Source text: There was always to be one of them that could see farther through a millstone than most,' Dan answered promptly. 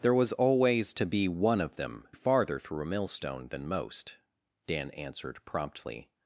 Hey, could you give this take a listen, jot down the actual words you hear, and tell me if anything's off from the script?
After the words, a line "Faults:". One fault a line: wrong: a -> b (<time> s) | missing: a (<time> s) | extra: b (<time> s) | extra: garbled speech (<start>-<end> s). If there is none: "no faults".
There was always to be one of them farther through a millstone than most,' Dan answered promptly.
Faults:
missing: that could see (2.1 s)